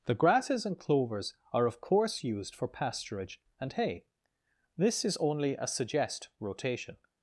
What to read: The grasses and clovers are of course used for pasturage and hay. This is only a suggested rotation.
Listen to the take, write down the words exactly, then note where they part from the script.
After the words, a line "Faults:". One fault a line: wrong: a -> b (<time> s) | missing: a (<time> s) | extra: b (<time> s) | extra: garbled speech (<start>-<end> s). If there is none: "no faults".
The grasses and clovers are of course used for pasturage and hay. This is only a suggest rotation.
Faults:
wrong: suggested -> suggest (5.7 s)